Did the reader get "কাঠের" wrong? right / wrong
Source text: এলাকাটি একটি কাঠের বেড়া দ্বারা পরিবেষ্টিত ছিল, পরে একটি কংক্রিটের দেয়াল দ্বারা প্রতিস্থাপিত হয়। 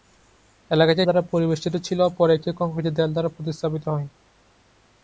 wrong